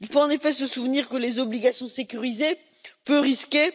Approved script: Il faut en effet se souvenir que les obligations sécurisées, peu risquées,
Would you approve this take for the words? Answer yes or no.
yes